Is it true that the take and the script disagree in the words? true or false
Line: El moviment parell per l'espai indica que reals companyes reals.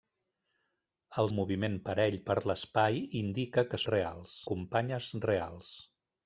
false